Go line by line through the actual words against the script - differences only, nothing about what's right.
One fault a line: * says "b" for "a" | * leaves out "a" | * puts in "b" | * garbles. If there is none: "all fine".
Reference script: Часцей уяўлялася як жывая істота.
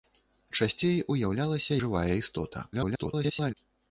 * leaves out "як"
* garbles